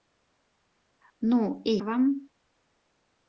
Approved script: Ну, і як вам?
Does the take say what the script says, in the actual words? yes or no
no